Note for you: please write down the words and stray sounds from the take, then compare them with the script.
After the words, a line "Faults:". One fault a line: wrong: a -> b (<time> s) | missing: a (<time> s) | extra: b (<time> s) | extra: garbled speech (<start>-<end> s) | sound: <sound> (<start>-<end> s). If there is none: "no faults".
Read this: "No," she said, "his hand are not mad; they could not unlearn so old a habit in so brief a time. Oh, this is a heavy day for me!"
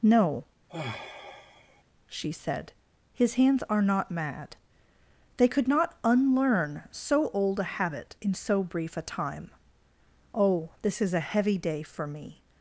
"No," she said, "his hands are not mad; they could not unlearn so old a habit in so brief a time. Oh, this is a heavy day for me!"
Faults:
sound: sigh (0.7-1.8 s)
wrong: hand -> hands (3.3 s)